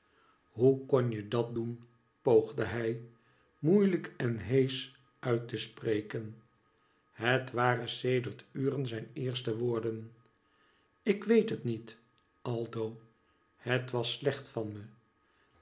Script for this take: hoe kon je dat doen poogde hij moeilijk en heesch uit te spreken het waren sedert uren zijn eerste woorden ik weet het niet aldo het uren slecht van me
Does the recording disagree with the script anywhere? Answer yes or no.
yes